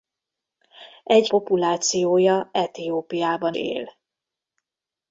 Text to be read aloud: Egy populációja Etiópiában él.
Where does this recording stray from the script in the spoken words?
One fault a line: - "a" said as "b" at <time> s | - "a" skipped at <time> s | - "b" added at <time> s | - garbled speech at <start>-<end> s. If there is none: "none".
none